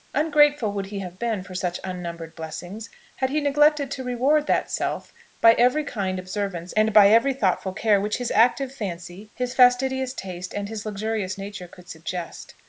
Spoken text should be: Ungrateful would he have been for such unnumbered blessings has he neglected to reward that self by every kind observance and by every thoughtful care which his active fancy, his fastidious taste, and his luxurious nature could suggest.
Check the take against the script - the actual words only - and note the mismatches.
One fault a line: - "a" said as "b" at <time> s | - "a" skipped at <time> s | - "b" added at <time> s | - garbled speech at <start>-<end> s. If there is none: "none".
- "has" said as "had" at 3.2 s